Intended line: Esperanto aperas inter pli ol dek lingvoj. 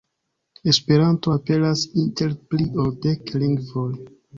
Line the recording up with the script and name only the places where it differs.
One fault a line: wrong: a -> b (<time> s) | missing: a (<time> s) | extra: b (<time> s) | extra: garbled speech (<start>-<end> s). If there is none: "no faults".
no faults